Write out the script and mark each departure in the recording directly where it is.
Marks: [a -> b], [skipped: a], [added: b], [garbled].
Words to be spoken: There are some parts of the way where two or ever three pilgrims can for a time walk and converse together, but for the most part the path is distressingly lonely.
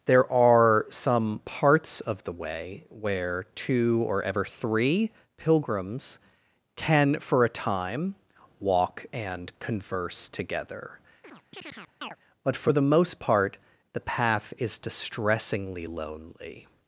There are some parts of the way where two or ever three pilgrims can for a time walk and converse together, but for the most part the path is distressingly lonely.